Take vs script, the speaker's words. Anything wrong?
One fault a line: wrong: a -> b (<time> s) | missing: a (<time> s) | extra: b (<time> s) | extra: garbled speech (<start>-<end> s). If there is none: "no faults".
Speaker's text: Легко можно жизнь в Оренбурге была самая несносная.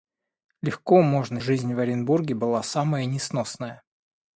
no faults